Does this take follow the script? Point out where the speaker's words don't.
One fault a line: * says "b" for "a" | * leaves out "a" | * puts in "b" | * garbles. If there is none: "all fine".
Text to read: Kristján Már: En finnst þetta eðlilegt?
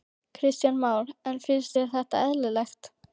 * puts in "þér"